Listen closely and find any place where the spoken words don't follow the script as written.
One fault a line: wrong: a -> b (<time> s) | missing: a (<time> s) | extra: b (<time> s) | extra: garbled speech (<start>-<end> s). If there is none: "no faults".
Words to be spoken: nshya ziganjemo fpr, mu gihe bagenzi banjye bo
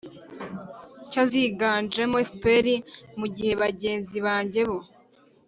no faults